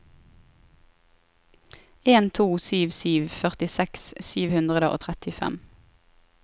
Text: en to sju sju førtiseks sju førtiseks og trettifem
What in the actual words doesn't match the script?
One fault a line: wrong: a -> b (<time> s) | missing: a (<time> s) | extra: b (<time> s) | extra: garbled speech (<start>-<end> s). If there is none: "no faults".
wrong: førtiseks -> hundre (4.5 s)